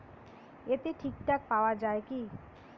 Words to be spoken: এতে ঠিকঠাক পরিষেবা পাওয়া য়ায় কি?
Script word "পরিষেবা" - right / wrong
wrong